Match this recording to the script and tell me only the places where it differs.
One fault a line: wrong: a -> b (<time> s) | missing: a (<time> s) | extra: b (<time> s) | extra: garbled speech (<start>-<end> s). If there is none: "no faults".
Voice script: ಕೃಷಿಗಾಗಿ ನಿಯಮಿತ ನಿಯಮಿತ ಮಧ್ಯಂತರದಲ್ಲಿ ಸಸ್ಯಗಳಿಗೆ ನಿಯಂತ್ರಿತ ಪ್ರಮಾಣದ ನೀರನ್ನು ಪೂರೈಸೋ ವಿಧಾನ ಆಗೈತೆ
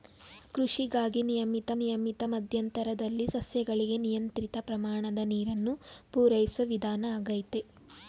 no faults